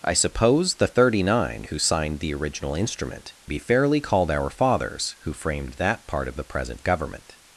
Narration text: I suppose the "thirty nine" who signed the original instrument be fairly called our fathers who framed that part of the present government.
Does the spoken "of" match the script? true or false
true